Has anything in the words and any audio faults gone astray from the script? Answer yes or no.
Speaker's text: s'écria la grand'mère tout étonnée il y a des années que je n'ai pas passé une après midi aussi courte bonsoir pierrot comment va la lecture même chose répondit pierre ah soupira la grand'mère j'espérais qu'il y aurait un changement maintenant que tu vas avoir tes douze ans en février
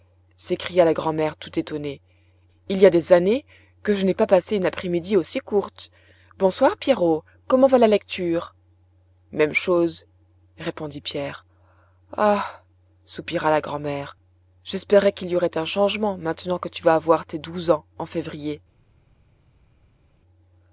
no